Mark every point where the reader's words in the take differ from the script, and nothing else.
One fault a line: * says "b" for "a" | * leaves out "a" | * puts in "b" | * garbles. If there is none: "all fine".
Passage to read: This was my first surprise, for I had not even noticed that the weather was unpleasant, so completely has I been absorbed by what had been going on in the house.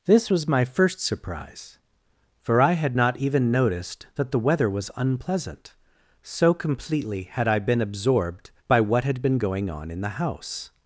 * says "had" for "has"